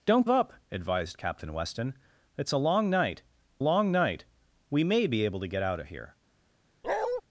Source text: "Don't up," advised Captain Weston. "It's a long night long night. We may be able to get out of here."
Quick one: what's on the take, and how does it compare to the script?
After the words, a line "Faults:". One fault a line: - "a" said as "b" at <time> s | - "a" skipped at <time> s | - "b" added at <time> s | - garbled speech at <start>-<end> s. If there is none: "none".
"Don't up," advised Captain Weston. "It's a long night long night. We may be able to get out of here."
Faults:
none